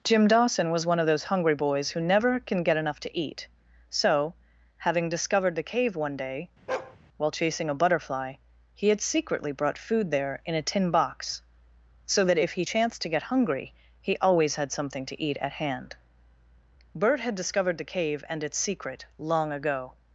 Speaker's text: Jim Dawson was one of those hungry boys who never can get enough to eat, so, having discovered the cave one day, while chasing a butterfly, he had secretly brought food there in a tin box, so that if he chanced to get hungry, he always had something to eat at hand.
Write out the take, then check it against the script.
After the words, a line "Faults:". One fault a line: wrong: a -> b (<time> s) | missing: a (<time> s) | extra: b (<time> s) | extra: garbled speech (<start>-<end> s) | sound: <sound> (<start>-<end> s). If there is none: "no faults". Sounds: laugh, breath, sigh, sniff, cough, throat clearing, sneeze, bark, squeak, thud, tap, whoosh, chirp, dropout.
Jim Dawson was one of those hungry boys who never can get enough to eat, so, having discovered the cave one day, while chasing a butterfly, he had secretly brought food there in a tin box, so that if he chanced to get hungry, he always had something to eat at hand. Bert had discovered the cave and its secret long ago
Faults:
sound: bark (6.7-7.0 s)
extra: Bert had discovered the cave and its secret long ago (16.9 s)